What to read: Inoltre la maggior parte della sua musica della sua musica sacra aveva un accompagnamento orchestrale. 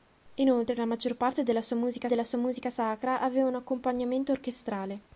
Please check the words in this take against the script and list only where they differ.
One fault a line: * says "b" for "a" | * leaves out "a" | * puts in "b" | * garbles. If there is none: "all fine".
all fine